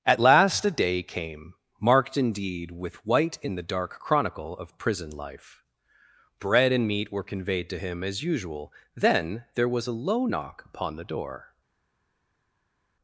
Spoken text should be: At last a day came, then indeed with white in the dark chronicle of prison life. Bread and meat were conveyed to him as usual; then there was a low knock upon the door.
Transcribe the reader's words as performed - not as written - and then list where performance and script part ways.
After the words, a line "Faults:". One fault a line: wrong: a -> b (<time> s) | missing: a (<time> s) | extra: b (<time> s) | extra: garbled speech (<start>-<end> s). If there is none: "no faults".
At last a day came, marked indeed with white in the dark chronicle of prison life. Bread and meat were conveyed to him as usual; then there was a low knock upon the door.
Faults:
wrong: then -> marked (1.8 s)